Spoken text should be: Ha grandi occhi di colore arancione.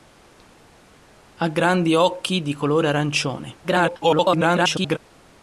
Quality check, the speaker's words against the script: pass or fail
fail